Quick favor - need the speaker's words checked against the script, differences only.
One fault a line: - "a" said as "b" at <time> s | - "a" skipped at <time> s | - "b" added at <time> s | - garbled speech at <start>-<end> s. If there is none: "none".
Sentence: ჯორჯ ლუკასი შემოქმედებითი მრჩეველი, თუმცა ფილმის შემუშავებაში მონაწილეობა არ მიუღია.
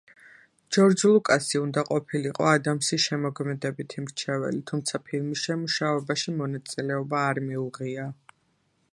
- "უნდა ყოფილიყო ადამსის" added at 1.6 s